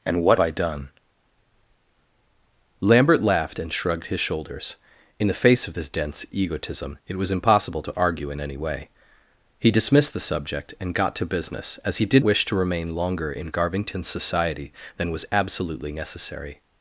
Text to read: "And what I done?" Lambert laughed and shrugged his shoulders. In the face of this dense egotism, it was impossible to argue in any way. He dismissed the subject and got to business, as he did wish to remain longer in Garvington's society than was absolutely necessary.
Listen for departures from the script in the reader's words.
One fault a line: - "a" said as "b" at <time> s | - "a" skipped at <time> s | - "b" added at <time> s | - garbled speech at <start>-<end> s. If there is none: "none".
none